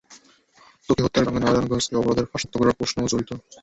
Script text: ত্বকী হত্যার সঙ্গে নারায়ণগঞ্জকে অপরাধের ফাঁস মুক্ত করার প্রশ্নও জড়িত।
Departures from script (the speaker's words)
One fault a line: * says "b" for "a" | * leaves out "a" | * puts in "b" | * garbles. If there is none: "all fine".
all fine